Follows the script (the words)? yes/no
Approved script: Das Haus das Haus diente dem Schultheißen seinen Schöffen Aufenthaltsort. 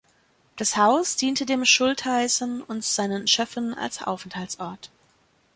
no